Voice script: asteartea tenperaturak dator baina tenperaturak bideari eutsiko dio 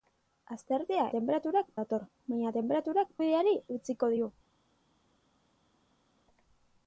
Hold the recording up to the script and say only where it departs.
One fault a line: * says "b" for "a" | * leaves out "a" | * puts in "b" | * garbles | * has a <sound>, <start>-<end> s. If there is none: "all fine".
all fine